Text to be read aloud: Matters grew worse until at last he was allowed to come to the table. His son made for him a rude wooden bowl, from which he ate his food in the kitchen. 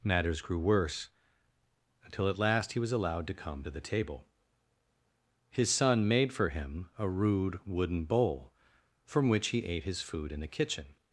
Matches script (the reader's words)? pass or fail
pass